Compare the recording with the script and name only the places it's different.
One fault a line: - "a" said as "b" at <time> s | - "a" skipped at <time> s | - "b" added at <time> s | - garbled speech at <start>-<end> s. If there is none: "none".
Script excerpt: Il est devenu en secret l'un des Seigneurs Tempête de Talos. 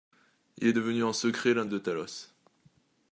- "des Seigneurs Tempête" skipped at 1.6 s